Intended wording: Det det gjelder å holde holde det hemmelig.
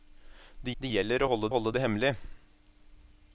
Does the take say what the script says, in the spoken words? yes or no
yes